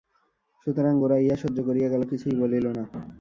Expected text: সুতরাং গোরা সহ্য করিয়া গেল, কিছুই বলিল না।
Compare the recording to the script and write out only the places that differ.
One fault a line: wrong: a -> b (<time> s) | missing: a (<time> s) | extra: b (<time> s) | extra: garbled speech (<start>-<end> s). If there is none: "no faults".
extra: ইহা (1.2 s)